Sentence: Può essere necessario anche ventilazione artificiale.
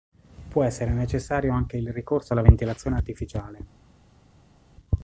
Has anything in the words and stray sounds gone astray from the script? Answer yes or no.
yes